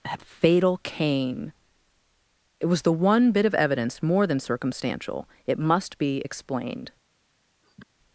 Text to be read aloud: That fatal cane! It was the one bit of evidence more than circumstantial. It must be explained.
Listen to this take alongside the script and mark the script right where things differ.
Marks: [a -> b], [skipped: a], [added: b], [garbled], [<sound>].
That fatal cane! It was the one bit of evidence more than circumstantial. It must be explained. [sniff]